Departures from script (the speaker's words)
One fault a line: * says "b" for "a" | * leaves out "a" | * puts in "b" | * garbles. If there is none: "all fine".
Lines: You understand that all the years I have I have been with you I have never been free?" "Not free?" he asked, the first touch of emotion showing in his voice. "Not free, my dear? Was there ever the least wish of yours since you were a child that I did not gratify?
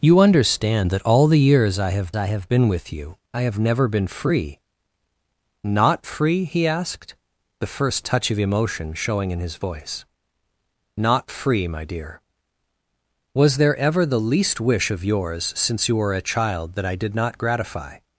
all fine